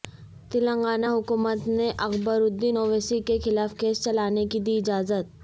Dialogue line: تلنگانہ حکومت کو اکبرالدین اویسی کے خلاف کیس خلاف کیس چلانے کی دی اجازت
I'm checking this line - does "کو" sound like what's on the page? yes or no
no